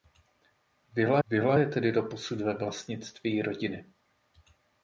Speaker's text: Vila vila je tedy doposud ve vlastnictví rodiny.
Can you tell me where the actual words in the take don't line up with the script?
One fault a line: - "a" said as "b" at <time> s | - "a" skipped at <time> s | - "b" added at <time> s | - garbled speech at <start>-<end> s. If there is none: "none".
none